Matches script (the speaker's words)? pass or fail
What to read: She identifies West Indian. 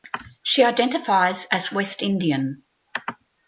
fail